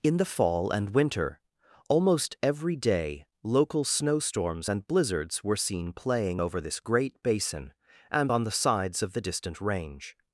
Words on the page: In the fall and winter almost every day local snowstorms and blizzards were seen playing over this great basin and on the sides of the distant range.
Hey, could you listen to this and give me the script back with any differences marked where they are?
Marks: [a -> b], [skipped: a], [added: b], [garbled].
In the fall and winter almost every day local snowstorms and blizzards were seen playing over this great basin and on the sides of the distant range.